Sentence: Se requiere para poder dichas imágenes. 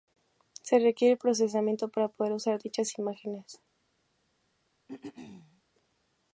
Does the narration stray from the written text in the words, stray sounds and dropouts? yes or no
yes